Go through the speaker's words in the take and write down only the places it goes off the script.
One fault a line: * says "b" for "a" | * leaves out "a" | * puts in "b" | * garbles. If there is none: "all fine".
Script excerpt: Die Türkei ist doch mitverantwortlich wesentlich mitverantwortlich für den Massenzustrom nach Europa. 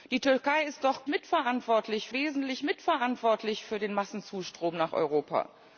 all fine